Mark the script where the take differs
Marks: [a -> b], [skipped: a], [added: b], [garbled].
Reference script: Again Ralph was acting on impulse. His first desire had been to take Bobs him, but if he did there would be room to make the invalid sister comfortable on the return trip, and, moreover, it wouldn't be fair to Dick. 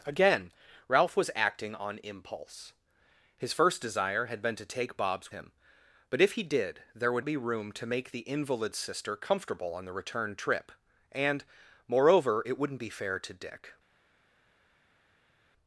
Again Ralph was acting on impulse. His first desire had been to take Bobs him, but if he did there would be room to make the invalid sister comfortable on the return trip, and, moreover, it wouldn't be fair to Dick.